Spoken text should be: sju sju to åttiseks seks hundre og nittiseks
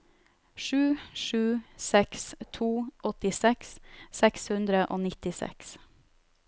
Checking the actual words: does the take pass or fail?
fail